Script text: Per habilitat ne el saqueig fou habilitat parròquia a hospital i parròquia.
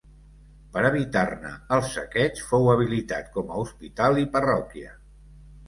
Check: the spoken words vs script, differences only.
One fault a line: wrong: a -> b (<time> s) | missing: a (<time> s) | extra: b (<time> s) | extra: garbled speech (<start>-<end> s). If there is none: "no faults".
wrong: habilitat -> evitar (0.9 s)
wrong: parròquia -> com (3.4 s)